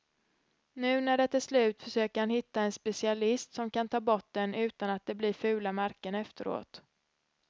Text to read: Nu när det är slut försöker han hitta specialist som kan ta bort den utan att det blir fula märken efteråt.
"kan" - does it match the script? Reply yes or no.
yes